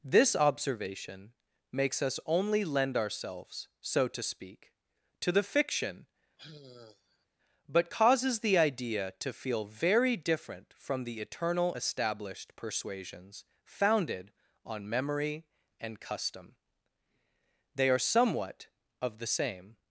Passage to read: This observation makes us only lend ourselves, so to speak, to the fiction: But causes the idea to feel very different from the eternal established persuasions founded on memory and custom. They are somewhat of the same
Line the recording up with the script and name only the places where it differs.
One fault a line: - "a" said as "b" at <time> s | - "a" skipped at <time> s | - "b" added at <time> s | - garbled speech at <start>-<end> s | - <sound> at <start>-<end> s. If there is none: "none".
- sigh at 6.4-7.3 s